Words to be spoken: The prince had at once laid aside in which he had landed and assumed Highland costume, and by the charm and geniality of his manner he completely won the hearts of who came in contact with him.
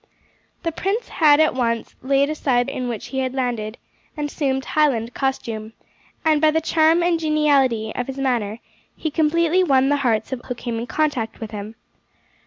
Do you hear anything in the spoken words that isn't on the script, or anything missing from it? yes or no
no